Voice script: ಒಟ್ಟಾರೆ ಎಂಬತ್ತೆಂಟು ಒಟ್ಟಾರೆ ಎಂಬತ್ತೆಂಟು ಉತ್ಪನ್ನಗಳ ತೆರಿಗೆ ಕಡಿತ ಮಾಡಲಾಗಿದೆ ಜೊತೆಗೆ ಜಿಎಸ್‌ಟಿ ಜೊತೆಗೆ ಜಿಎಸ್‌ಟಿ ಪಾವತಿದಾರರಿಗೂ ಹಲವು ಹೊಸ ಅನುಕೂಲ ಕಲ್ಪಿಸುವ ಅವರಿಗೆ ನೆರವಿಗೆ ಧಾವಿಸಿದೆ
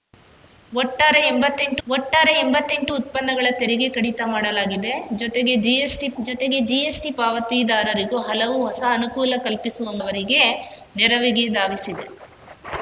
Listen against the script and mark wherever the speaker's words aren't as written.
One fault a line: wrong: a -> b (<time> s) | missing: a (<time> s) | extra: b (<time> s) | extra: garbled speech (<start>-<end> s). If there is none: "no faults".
no faults